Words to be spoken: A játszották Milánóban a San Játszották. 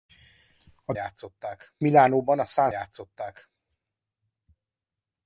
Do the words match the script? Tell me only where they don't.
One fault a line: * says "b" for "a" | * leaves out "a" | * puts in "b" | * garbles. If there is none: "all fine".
all fine